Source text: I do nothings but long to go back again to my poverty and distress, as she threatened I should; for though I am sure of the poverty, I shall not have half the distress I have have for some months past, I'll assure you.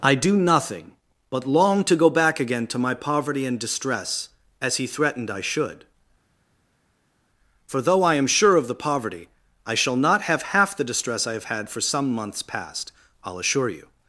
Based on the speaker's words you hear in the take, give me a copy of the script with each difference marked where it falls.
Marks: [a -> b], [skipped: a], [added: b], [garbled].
I do [nothings -> nothing] but long to go back again to my poverty and distress, as [she -> he] threatened I should; for though I am sure of the poverty, I shall not have half the distress I have [have -> had] for some months past, I'll assure you.